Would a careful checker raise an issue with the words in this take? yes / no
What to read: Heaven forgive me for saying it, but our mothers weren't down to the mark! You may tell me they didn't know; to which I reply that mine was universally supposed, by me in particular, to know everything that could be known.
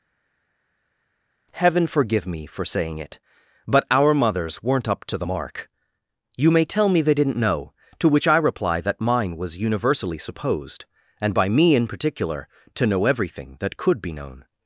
yes